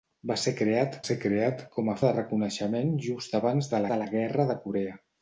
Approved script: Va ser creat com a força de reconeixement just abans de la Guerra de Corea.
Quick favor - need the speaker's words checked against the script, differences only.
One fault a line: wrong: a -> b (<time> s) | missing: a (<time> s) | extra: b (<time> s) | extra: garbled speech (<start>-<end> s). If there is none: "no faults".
extra: ser creat (1.1 s)
missing: força (1.9 s)
extra: de (3.9 s)